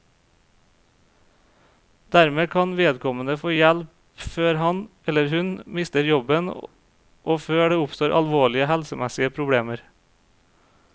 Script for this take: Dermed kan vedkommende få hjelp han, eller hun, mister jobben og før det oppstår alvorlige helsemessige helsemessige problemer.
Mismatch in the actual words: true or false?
true